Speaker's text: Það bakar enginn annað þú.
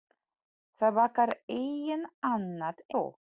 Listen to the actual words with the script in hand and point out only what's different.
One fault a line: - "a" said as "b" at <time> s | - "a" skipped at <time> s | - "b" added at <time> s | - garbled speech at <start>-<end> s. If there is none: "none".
none